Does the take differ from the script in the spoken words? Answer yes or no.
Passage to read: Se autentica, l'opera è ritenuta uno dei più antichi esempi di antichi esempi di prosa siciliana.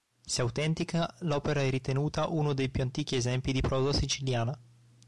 yes